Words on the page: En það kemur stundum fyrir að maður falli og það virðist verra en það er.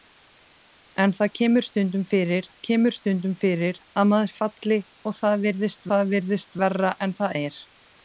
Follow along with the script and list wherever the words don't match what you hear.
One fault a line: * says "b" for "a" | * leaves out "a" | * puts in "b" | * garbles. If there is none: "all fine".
* puts in "kemur stundum fyrir"
* puts in "það virðist"